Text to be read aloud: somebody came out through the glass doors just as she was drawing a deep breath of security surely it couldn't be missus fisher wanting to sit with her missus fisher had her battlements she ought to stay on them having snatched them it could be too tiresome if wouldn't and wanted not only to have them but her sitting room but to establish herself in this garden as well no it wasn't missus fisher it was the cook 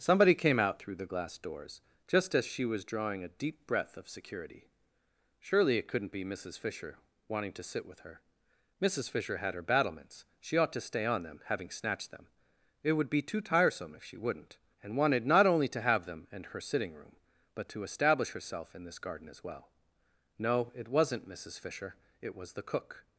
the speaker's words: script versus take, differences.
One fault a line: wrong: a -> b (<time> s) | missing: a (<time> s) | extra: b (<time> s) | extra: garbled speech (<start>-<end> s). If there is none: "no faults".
wrong: could -> would (12.9 s)
extra: she (14.0 s)
wrong: but -> and (16.3 s)